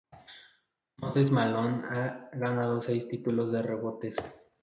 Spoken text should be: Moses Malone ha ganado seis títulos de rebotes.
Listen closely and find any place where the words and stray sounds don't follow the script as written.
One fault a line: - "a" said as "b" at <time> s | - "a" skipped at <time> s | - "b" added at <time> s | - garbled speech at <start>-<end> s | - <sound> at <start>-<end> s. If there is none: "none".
none